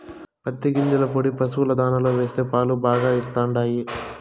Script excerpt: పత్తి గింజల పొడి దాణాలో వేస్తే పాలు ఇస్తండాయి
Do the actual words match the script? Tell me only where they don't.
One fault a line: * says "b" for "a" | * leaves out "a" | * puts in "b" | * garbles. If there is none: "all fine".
* puts in "పశుల"
* puts in "బాగా"